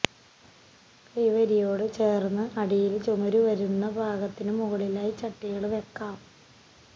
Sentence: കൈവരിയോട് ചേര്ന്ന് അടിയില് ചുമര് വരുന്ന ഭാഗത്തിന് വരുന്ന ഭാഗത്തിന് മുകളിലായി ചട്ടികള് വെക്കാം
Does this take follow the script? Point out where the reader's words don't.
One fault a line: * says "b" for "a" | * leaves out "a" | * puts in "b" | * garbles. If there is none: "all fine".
* leaves out "വരുന്ന ഭാഗത്തിന്"